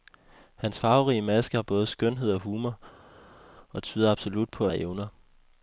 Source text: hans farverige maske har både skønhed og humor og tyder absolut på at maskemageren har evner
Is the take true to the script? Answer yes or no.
no